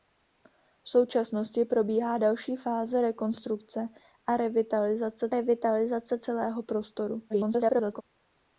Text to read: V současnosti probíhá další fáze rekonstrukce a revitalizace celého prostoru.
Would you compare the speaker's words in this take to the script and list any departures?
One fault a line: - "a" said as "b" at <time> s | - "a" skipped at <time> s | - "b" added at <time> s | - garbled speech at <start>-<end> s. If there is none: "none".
- "revitalizace" added at 5.3 s
- garbled speech at 7.3-8.0 s